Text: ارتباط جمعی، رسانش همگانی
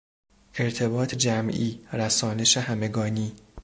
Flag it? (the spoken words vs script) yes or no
no